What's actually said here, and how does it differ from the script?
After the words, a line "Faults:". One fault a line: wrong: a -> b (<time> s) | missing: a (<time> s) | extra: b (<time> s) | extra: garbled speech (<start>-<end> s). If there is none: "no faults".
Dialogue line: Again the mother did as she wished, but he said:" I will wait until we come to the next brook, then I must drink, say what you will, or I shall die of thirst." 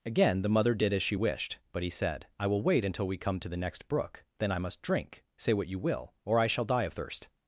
Again the mother did as she wished, but he said:" I will wait until we come to the next brook, then I must drink, say what you will, or I shall die of thirst."
Faults:
no faults